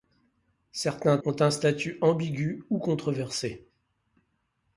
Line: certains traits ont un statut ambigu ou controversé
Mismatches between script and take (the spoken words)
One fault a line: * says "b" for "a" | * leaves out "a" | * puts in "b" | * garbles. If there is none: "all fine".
* leaves out "traits"